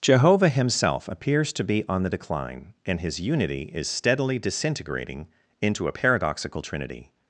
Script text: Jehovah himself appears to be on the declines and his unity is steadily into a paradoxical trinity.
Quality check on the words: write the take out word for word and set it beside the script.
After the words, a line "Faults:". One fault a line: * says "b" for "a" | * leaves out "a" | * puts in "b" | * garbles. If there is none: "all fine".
Jehovah himself appears to be on the decline and his unity is steadily disintegrating into a paradoxical trinity.
Faults:
* says "decline" for "declines"
* puts in "disintegrating"